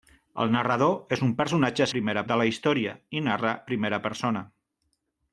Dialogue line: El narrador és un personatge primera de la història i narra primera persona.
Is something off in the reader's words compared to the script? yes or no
no